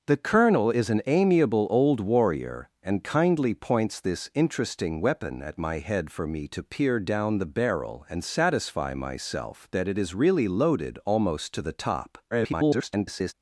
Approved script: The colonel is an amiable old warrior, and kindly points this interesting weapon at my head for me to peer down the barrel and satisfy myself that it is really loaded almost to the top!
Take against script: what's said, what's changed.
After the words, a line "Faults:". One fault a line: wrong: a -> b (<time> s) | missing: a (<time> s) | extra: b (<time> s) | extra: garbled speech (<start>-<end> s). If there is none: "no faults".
The colonel is an amiable old warrior, and kindly points this interesting weapon at my head for me to peer down the barrel and satisfy myself that it is really loaded almost to the top! [garbled]
Faults:
extra: garbled speech (12.3-13.3 s)